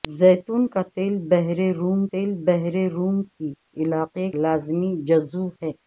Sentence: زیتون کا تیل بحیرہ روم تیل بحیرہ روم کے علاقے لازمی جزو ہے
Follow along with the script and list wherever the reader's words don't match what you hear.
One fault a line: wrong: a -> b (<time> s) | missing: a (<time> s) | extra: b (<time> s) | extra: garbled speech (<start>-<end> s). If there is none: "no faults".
no faults